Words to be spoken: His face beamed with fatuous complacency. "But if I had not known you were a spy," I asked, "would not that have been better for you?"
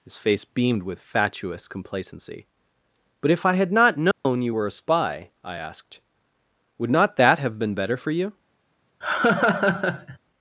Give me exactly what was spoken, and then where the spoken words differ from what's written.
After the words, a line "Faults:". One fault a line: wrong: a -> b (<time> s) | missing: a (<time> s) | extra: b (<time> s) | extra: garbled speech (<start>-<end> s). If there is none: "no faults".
His face beamed with fatuous complacency. "But if I had not known you were a spy," I asked, "would not that have been better for you?"
Faults:
no faults